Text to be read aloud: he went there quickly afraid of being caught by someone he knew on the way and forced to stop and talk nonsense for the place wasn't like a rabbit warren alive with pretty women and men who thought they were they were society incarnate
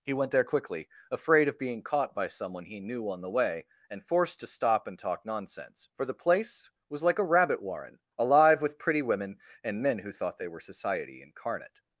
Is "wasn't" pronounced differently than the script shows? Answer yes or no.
yes